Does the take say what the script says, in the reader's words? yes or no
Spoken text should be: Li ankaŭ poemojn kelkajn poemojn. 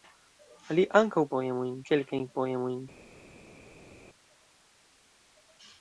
yes